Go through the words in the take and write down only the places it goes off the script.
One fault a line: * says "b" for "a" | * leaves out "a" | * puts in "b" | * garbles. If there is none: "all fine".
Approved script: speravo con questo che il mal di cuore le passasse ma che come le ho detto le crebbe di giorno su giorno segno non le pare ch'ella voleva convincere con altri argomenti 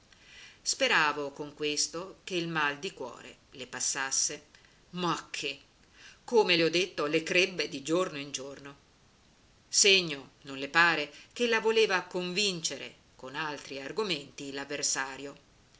* says "in" for "su"